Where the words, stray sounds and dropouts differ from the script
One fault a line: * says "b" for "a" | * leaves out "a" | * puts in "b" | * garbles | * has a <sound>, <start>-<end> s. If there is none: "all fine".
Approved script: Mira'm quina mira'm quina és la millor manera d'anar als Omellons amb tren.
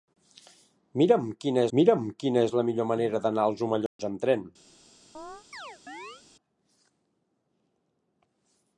* has a dropout, 3.9-4.0 s
* has a chirp, 5.1-6.2 s